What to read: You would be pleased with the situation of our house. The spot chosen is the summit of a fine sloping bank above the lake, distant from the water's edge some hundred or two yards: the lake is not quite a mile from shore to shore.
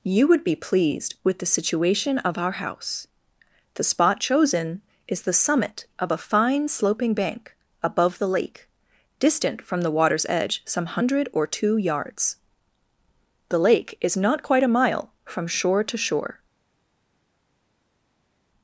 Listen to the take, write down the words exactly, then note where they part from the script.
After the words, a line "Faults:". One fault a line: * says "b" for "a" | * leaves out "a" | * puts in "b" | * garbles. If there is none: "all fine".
You would be pleased with the situation of our house. The spot chosen is the summit of a fine sloping bank above the lake, distant from the water's edge some hundred or two yards: the lake is not quite a mile from shore to shore.
Faults:
all fine